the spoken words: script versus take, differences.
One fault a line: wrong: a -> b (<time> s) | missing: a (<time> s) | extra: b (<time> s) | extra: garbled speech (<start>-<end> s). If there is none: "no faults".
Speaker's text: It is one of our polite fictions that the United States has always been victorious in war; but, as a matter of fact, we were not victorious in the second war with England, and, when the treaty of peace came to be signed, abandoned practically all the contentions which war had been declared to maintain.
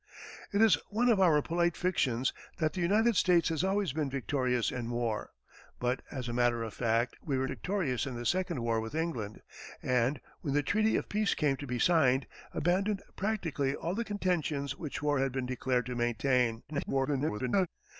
missing: not (7.5 s)
extra: garbled speech (16.7-17.7 s)